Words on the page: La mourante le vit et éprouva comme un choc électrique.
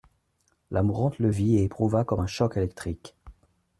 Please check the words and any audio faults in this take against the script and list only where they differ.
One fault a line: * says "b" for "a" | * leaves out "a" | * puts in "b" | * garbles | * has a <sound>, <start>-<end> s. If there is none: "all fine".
all fine